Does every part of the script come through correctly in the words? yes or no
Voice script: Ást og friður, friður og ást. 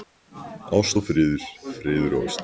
yes